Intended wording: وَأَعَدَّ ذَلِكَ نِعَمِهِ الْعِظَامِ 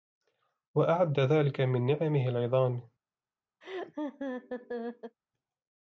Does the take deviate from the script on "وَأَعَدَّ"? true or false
false